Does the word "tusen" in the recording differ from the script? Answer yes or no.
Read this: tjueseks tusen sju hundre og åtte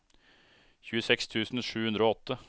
no